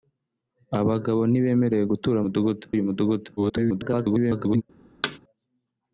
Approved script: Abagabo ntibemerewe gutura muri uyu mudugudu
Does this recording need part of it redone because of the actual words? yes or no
yes